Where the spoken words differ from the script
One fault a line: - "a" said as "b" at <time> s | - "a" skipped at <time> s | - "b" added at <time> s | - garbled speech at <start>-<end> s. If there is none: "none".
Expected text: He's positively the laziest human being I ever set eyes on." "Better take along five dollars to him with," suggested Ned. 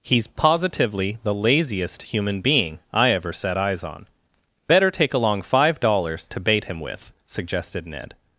- "bait" added at 6.4 s